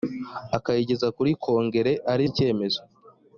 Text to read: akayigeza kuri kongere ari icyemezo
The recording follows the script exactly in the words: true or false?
true